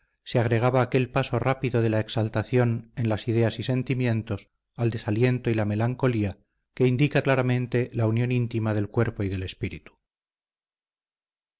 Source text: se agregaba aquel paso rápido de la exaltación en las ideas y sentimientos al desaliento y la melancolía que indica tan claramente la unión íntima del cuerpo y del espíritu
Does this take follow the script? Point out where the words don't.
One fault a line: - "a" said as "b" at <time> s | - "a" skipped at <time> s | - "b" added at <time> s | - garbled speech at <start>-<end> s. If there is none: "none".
- "tan" skipped at 7.2 s